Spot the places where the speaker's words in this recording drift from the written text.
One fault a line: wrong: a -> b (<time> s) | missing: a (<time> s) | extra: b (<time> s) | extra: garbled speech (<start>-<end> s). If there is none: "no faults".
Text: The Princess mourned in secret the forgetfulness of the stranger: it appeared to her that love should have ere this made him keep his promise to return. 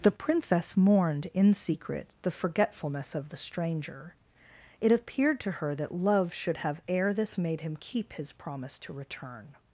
no faults